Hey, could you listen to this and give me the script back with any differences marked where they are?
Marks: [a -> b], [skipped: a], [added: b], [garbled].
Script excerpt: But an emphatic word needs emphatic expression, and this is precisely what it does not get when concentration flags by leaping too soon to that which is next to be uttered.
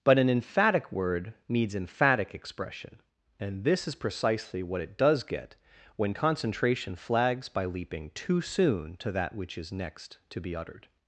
But an emphatic word needs emphatic expression, and this is precisely what it does [skipped: not] get when concentration flags by leaping too soon to that which is next to be uttered.